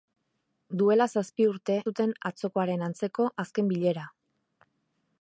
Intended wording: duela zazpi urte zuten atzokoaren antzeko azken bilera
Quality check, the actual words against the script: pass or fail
pass